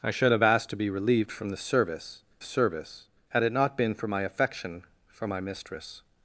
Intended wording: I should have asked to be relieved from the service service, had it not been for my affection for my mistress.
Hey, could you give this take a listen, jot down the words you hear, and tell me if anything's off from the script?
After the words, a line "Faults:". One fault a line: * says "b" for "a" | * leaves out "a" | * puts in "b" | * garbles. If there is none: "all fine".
I should have asked to be relieved from the service service, had it not been for my affection for my mistress.
Faults:
all fine